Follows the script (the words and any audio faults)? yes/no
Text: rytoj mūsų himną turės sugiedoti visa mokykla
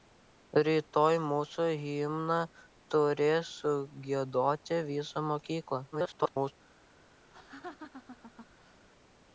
no